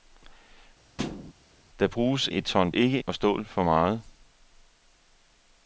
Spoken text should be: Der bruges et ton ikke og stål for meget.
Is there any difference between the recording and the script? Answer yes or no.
no